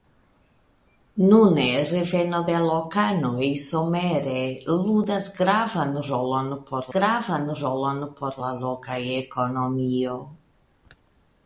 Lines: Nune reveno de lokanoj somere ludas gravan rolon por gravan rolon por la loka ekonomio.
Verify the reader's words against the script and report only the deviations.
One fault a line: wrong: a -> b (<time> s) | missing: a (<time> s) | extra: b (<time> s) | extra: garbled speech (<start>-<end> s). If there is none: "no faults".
no faults